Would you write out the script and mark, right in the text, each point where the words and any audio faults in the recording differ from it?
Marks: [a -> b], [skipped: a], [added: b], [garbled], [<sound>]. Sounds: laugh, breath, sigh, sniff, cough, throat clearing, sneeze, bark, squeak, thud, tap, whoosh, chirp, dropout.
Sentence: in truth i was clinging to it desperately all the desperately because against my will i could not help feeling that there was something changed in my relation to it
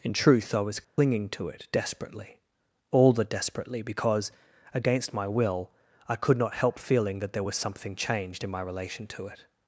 in truth i was clinging [dropout] to it desperately all the desperately because against my will i could not help feeling that there was something changed in my relation to it